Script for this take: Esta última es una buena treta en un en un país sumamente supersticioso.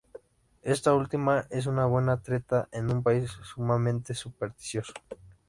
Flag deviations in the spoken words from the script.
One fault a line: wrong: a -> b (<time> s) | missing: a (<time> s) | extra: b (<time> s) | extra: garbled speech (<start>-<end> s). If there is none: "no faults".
missing: en un (3.0 s)